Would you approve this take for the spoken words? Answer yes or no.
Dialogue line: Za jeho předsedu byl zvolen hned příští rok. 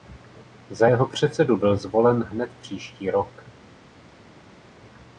yes